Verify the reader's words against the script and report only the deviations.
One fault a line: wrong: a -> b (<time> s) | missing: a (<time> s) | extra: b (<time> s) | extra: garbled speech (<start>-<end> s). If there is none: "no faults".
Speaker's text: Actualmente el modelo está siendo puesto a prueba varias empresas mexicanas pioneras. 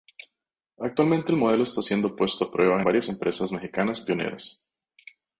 no faults